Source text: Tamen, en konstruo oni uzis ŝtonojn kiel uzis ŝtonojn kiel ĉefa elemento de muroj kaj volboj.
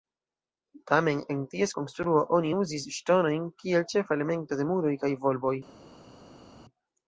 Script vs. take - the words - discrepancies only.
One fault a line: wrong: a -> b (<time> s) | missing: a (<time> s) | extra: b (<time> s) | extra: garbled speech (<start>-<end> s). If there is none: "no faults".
extra: ties (1.5 s)
missing: uzis ŝtonojn kiel (3.9 s)